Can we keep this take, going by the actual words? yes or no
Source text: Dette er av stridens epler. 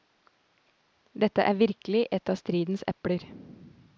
no